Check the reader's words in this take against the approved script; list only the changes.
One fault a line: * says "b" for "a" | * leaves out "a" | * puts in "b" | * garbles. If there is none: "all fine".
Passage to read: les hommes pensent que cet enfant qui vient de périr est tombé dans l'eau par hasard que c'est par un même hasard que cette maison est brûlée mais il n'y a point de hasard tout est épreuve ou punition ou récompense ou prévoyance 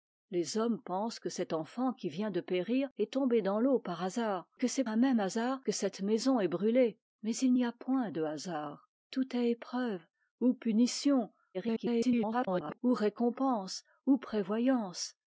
* leaves out "par"
* garbles